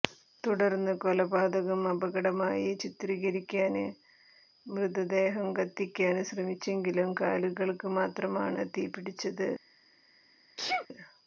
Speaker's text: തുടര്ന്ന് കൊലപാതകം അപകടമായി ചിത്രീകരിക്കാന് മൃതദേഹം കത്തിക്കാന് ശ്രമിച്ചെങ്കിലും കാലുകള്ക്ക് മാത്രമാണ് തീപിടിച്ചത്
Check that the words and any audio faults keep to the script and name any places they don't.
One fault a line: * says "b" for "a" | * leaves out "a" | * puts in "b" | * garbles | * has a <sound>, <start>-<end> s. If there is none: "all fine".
* has a sneeze, 10.6-10.9 s